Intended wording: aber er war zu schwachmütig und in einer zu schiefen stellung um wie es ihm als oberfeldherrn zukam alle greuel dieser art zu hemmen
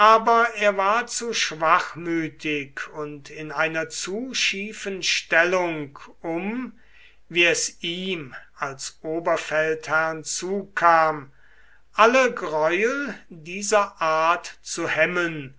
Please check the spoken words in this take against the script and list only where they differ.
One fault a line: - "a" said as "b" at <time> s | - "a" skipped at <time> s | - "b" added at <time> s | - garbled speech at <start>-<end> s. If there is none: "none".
none